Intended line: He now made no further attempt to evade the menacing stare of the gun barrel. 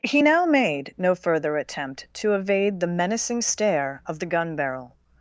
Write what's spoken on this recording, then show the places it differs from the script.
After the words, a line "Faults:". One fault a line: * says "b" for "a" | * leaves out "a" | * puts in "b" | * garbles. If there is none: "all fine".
He now made no further attempt to evade the menacing stare of the gun barrel.
Faults:
all fine